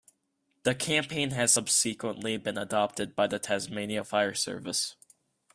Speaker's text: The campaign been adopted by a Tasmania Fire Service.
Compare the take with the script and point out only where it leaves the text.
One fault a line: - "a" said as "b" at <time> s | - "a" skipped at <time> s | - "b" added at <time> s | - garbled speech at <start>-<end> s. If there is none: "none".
- "has subsequently" added at 1.3 s
- "a" said as "the" at 3.3 s